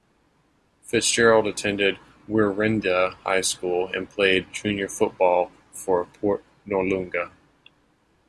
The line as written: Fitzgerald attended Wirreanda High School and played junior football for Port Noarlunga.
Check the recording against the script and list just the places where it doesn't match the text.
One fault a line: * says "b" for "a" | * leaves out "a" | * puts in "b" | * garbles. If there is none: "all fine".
all fine